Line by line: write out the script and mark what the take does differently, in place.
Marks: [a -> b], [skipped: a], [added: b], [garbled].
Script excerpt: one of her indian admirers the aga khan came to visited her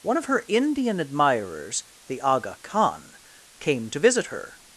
one of her indian admirers the aga khan came to [visited -> visit] her